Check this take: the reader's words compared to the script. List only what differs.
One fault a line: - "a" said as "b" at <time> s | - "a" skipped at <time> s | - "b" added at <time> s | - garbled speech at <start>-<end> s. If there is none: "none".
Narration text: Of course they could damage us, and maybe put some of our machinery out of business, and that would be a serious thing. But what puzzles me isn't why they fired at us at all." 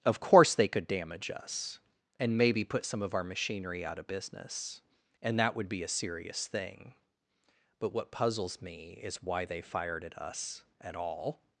- "isn't" said as "is" at 9.0 s